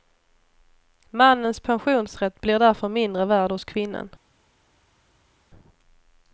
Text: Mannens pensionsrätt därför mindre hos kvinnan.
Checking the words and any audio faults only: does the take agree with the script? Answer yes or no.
no